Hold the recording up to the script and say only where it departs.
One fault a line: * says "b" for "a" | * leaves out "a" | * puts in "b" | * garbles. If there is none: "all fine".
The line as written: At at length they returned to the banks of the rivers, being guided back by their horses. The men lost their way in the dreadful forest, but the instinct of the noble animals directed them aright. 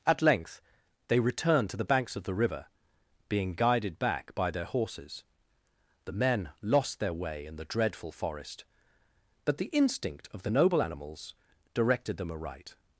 * leaves out "at"
* says "river" for "rivers"